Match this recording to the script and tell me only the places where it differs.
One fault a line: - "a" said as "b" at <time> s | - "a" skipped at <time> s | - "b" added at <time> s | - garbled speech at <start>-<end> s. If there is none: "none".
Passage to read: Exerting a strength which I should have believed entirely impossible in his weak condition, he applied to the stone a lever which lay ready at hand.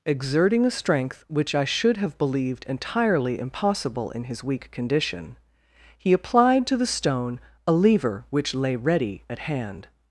none